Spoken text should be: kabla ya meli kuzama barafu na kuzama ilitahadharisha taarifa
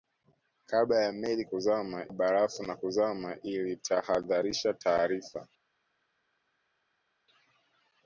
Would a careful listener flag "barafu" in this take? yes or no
no